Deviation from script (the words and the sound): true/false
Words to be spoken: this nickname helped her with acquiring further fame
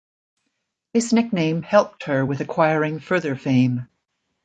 false